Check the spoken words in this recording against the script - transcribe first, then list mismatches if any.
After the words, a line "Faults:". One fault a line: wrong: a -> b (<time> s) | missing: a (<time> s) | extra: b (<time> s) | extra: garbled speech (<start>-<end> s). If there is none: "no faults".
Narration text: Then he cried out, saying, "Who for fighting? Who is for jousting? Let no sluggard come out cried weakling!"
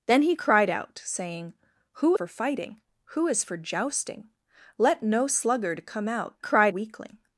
Then he cried out, saying, "Who for fighting? Who is for jousting? Let no sluggard come out cried weakling!"
Faults:
no faults